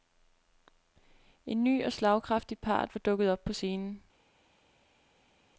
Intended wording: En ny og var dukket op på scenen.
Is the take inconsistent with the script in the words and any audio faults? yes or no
yes